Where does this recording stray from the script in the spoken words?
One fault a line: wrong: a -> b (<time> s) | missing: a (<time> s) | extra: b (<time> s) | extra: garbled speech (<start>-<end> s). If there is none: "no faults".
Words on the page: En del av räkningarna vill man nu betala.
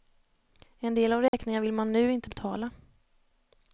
extra: inte (2.1 s)